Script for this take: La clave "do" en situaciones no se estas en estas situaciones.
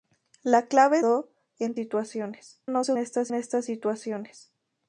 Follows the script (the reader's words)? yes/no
yes